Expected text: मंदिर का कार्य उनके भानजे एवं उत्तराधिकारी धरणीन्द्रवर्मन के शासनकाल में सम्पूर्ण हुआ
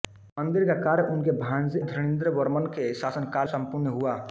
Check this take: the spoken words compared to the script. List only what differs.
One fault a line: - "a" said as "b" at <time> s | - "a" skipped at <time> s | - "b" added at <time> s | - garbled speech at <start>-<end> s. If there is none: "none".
- "एवं उत्तराधिकारी" skipped at 1.8 s
- "में" skipped at 3.5 s